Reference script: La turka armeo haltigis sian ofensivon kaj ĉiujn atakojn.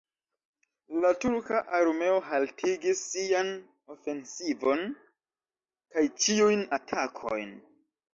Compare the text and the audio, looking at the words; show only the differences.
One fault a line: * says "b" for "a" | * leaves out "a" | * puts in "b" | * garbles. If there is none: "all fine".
all fine